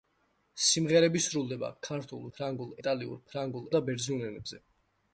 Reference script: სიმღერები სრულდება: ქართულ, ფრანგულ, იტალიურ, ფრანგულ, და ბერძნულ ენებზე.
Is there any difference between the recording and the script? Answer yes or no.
no